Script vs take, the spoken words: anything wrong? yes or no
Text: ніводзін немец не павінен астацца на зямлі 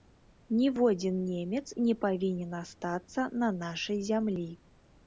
yes